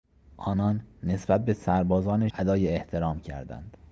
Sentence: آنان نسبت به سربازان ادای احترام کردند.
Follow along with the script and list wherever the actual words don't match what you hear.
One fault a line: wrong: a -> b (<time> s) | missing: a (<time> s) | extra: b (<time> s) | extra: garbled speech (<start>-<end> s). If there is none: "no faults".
no faults